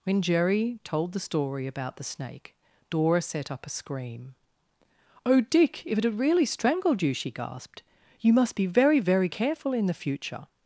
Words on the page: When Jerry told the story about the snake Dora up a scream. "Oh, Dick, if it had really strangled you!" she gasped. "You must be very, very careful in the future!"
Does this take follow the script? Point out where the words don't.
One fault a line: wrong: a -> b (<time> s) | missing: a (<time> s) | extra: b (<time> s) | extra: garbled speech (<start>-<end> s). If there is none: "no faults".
extra: set (3.2 s)